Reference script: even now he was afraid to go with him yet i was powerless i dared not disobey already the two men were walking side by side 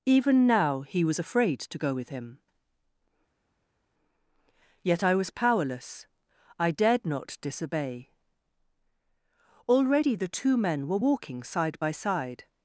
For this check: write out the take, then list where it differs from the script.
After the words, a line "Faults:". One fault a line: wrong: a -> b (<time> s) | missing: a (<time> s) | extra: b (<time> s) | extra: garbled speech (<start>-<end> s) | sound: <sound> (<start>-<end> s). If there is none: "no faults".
even now he was afraid to go with him yet i was powerless i dared not disobey already the two men were walking side by side
Faults:
no faults